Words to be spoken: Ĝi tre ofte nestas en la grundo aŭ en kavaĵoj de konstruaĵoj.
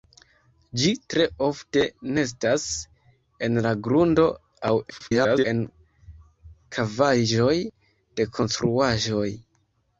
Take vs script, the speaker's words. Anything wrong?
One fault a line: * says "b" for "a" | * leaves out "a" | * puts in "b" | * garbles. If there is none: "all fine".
* garbles